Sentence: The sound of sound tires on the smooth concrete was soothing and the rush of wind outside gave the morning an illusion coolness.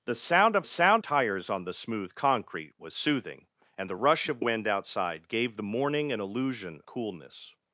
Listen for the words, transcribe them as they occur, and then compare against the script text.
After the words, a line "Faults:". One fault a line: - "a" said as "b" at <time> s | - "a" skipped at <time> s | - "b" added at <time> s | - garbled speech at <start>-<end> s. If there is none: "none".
The sound of sound tires on the smooth concrete was soothing and the rush of wind outside gave the morning an illusion coolness.
Faults:
none